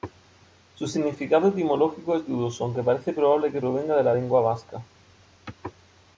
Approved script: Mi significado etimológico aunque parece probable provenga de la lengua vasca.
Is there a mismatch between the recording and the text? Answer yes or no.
yes